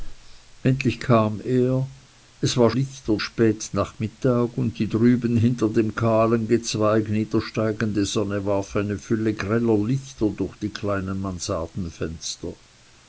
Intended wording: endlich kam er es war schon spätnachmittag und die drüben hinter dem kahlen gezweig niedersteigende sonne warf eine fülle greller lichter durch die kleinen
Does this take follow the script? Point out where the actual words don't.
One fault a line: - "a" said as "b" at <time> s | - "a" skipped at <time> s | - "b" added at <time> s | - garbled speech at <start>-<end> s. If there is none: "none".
- "schon" said as "lichter" at 2.7 s